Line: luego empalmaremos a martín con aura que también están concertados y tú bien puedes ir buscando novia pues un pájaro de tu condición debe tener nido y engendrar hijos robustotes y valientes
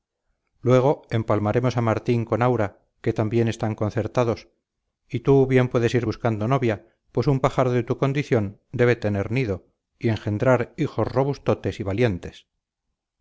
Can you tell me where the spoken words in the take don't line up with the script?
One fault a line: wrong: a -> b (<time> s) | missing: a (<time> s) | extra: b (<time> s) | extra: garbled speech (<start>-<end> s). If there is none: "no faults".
no faults